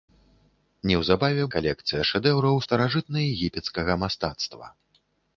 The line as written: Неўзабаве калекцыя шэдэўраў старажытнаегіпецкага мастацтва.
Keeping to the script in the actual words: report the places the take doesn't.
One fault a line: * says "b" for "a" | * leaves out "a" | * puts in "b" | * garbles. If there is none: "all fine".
all fine